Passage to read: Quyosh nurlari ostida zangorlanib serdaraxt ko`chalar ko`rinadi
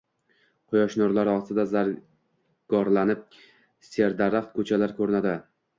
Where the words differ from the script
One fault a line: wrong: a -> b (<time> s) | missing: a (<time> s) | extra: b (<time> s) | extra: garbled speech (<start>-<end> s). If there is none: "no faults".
no faults